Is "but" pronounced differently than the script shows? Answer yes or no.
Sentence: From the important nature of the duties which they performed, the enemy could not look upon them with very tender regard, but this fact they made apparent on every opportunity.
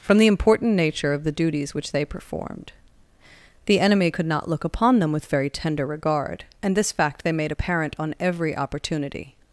yes